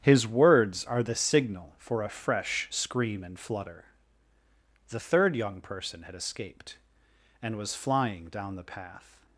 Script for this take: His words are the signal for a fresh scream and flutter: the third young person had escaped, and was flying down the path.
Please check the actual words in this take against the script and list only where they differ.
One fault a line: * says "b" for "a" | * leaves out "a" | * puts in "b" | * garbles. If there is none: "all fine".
all fine